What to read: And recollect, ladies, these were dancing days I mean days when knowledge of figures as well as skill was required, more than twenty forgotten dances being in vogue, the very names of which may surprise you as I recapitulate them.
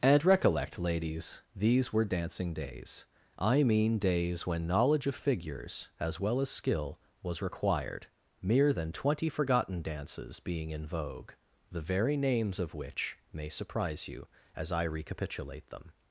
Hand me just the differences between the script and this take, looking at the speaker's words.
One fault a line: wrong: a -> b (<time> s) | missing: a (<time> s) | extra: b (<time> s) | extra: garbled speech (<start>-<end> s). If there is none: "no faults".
wrong: more -> mere (8.4 s)